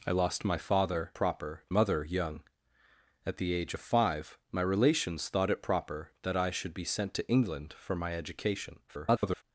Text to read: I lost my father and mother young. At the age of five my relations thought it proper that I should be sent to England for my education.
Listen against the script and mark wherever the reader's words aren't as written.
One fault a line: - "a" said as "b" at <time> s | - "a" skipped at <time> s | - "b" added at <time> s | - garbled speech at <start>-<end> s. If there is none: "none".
- "and" said as "proper" at 1.1 s
- garbled speech at 8.9-9.4 s